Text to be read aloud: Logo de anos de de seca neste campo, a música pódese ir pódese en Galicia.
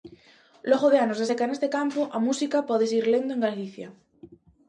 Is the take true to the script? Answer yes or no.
no